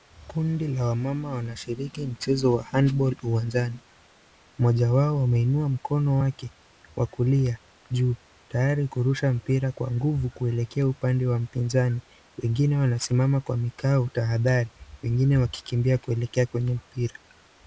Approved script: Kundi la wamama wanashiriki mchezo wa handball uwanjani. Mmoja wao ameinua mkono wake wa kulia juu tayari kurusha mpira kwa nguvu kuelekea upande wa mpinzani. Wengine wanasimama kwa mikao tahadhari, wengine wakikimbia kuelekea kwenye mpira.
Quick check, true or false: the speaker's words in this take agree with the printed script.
true